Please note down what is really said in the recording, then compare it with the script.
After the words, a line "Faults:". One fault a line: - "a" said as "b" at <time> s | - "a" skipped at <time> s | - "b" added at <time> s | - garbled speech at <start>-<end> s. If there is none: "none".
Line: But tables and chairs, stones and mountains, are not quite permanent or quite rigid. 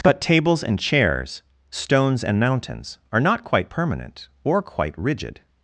But tables and chairs, stones and mountains, are not quite permanent or quite rigid.
Faults:
none